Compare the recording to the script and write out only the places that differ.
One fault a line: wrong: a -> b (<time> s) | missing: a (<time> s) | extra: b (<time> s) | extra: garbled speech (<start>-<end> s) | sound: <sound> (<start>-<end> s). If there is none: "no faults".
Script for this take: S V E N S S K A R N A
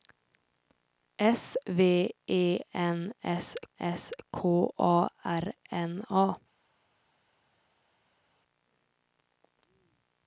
no faults